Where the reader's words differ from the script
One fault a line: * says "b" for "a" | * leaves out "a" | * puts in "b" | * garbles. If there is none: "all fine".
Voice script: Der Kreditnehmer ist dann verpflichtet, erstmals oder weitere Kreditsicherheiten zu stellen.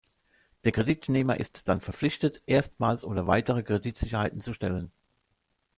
all fine